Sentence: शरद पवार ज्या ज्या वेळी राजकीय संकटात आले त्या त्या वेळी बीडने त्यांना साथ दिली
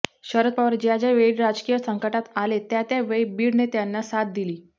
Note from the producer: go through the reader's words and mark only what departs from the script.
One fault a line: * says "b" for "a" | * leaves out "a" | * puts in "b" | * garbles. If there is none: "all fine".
all fine